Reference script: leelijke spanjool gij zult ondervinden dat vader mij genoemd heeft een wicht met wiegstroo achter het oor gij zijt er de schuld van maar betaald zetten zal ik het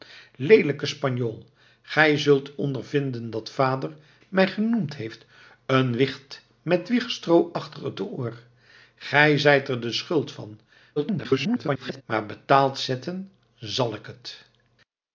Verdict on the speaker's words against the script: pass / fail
fail